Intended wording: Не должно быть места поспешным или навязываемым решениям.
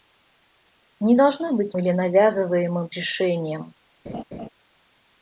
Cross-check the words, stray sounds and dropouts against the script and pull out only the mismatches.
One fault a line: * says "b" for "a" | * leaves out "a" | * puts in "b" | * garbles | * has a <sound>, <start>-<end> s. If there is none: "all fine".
* leaves out "места поспешным"
* has a laugh, 4.1-4.5 s